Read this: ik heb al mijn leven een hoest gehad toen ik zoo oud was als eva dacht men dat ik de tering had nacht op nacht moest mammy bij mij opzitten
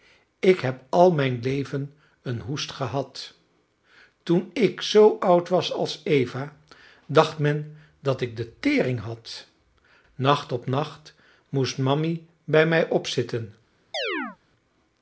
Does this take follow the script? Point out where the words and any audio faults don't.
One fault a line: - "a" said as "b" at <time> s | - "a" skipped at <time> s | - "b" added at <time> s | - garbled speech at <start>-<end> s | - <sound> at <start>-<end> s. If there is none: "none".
- chirp at 13.9-14.4 s